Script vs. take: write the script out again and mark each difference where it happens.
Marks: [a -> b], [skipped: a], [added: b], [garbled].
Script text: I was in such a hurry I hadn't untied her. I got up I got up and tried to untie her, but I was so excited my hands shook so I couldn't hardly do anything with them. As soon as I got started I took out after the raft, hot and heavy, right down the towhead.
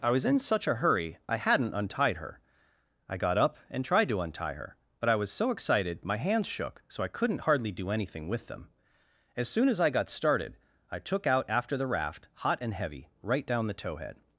I was in such a hurry I hadn't untied her. I got up [skipped: I got up] and tried to untie her, but I was so excited my hands shook so I couldn't hardly do anything with them. As soon as I got started I took out after the raft, hot and heavy, right down the towhead.